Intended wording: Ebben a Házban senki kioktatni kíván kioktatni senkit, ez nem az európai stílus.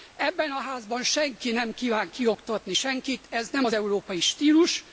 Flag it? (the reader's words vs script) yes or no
yes